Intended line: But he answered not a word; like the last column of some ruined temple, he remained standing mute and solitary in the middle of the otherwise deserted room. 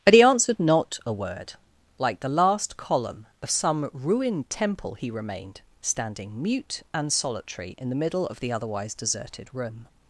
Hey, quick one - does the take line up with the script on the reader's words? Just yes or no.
yes